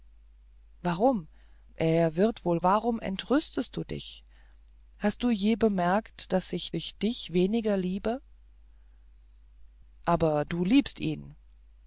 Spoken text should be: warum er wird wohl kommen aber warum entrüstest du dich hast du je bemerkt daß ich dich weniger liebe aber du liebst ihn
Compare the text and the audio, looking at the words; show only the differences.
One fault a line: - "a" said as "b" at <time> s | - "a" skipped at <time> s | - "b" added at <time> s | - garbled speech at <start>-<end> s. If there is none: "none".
- "kommen aber" skipped at 2.6 s
- "ich" added at 6.7 s